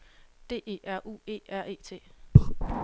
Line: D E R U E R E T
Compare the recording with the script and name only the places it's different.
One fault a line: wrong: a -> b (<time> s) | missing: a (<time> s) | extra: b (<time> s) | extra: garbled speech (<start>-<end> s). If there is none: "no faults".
no faults